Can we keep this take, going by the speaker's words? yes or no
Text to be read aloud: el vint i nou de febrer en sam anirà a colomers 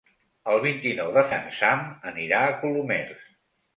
no